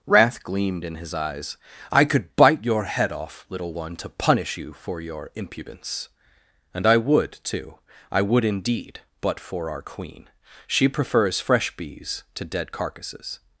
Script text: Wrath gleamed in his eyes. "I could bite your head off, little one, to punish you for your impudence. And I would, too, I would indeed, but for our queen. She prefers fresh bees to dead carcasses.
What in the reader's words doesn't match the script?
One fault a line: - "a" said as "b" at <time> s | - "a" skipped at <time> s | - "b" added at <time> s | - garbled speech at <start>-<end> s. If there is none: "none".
none